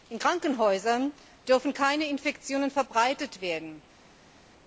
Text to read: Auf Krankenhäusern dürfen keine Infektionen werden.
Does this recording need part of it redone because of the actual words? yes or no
yes